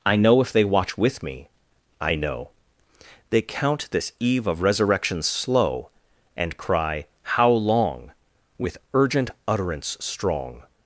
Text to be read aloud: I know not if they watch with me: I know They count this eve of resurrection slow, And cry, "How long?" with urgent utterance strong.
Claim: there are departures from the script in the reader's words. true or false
true